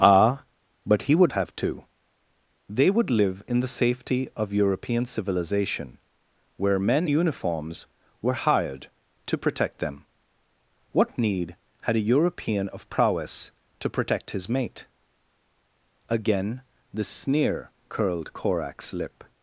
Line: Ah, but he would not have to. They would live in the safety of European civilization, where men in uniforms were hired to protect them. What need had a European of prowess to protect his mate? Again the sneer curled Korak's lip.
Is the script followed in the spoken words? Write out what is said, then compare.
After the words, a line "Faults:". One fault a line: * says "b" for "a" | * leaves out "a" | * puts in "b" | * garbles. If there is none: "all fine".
Ah, but he would have to. They would live in the safety of European civilization, where men uniforms were hired to protect them. What need had a European of prowess to protect his mate? Again the sneer curled Korak's lip.
Faults:
* leaves out "not"
* leaves out "in"